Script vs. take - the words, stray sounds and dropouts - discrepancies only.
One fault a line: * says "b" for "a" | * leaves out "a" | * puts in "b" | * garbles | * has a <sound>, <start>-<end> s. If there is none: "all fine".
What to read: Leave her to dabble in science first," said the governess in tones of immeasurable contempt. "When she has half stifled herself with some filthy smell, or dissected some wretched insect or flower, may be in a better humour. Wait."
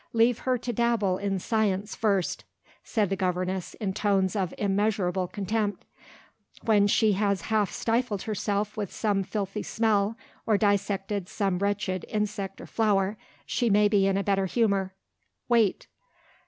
* puts in "she"